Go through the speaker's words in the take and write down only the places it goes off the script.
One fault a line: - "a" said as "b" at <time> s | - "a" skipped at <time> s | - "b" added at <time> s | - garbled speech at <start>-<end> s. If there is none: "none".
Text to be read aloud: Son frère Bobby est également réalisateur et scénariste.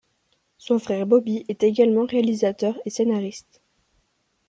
none